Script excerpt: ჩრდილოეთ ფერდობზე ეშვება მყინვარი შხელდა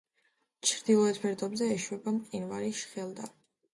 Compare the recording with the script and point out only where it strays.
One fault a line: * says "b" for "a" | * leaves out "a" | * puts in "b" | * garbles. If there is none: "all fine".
all fine